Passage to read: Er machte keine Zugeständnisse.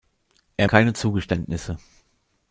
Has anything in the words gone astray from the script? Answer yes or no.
yes